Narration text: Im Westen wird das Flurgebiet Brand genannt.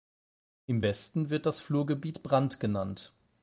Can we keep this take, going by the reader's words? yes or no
yes